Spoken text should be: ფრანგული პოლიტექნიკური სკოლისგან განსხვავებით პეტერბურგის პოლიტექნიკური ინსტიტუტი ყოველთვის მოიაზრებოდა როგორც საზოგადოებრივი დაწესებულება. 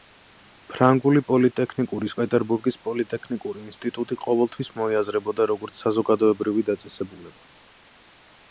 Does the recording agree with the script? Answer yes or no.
no